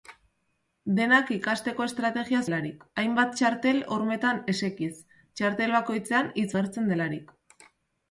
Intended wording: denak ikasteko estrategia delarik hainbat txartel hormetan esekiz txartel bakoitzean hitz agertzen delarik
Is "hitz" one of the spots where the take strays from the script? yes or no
no